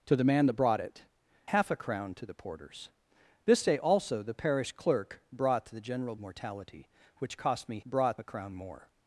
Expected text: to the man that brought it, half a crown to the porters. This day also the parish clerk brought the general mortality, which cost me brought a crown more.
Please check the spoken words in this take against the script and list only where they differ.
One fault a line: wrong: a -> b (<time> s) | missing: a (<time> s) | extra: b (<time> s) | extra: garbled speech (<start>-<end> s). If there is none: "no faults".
no faults